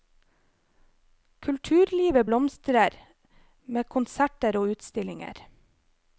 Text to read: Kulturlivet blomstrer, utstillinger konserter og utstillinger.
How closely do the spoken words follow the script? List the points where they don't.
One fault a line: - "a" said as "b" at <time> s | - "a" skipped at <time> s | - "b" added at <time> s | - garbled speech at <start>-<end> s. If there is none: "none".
- "utstillinger" said as "med" at 3.6 s